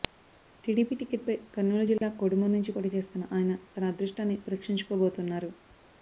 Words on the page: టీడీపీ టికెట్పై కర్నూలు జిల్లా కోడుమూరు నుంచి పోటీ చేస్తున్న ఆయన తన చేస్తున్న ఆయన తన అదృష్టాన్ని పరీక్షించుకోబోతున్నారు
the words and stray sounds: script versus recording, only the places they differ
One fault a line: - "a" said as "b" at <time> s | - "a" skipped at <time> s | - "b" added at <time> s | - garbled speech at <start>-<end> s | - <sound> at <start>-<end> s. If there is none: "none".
- dropout at 2.0-2.0 s
- "చేస్తున్న ఆయన తన" skipped at 3.9 s